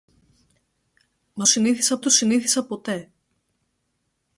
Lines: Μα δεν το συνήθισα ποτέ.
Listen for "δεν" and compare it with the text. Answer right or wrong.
wrong